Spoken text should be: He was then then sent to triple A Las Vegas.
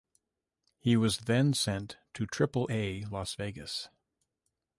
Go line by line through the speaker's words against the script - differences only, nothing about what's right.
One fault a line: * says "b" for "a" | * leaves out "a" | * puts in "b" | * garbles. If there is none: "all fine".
* leaves out "then"